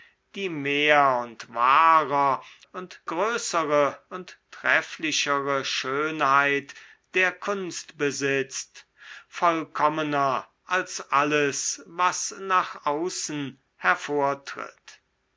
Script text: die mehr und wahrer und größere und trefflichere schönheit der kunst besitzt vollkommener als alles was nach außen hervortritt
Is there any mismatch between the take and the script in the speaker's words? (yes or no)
no